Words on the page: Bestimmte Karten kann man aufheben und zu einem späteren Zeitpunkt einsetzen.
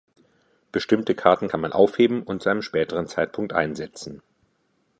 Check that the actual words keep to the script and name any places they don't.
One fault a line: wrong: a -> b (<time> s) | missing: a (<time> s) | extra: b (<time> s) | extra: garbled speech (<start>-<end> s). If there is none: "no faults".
no faults